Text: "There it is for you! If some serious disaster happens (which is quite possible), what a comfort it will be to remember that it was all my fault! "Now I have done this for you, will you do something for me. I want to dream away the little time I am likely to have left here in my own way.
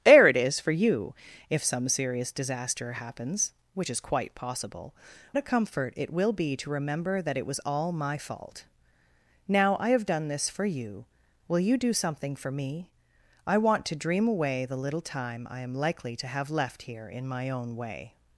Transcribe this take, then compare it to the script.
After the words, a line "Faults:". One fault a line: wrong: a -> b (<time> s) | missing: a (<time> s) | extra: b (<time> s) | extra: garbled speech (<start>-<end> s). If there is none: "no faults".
"There it is for you! If some serious disaster happens (which is quite possible), a comfort it will be to remember that it was all my fault! "Now I have done this for you, will you do something for me. I want to dream away the little time I am likely to have left here in my own way.
Faults:
missing: what (5.0 s)